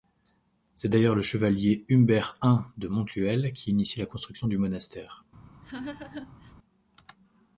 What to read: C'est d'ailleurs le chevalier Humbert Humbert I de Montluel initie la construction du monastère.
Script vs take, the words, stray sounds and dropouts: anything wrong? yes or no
yes